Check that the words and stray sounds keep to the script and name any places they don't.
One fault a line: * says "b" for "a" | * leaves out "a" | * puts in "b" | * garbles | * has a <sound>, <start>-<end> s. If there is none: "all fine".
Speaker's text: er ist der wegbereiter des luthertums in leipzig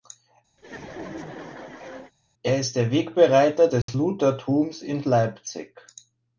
* has a laugh, 0.6-2.1 s
* has a dropout, 3.8-3.9 s